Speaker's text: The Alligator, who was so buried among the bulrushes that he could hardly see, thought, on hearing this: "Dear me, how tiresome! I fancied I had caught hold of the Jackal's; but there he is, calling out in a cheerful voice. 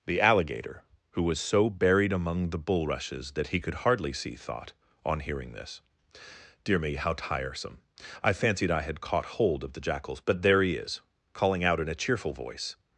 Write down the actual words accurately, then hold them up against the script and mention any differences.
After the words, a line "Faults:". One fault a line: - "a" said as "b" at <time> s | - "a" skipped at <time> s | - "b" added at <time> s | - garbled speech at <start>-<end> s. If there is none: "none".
The Alligator, who was so buried among the bulrushes that he could hardly see, thought, on hearing this: "Dear me, how tiresome! I fancied I had caught hold of the Jackal's; but there he is, calling out in a cheerful voice.
Faults:
none